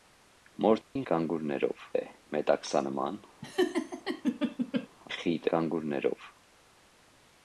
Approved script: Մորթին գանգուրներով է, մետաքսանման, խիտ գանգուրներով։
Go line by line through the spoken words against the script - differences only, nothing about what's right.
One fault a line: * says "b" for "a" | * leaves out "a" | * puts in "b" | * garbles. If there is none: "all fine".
all fine